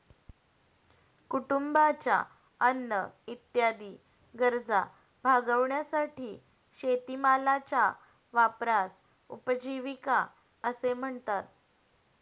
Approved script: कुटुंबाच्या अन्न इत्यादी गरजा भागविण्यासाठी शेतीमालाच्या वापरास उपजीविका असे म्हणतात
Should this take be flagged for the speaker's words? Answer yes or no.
no